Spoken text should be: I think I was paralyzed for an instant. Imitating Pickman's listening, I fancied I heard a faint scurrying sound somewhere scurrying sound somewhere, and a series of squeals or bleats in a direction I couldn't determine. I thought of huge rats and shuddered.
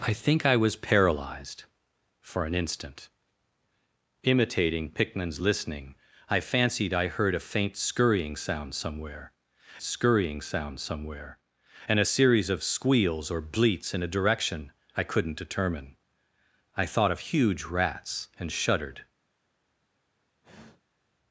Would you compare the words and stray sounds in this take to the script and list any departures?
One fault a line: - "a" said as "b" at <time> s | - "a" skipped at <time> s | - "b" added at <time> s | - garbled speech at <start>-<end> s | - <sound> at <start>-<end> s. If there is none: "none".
- sigh at 20.4-21.0 s